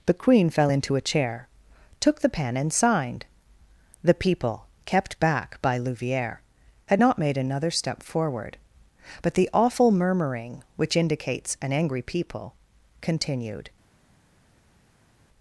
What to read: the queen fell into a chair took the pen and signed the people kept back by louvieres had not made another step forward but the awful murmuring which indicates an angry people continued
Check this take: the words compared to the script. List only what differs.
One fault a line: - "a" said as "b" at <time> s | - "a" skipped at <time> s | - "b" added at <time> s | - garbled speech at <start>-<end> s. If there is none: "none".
none